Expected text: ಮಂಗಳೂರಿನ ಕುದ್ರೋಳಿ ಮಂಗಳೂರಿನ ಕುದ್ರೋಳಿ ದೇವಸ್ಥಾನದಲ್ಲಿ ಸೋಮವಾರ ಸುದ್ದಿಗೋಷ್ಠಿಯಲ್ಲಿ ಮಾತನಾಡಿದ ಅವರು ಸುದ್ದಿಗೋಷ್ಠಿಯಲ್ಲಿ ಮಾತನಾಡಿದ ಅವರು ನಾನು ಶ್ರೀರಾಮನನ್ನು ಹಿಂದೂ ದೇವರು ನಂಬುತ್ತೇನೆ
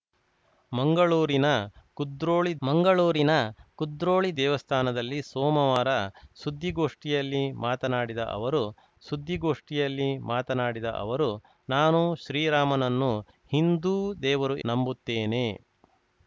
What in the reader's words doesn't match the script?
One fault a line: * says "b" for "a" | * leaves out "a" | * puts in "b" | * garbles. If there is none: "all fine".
all fine